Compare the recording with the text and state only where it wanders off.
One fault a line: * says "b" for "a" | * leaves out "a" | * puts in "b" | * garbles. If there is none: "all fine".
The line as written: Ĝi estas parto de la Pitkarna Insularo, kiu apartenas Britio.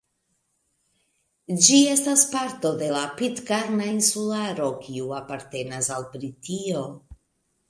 * puts in "al"